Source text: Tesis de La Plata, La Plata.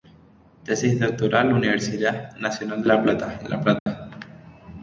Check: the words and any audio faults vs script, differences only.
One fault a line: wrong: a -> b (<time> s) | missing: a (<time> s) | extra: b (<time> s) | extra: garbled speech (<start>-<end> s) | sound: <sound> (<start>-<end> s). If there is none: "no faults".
extra: doctoral Universidad Nacional (1.0 s)
sound: dropout (3.8-3.9 s)